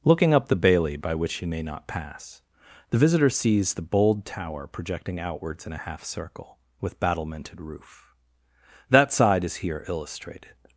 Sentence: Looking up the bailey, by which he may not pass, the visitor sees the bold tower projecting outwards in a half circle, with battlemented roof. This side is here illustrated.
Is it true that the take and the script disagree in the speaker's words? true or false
true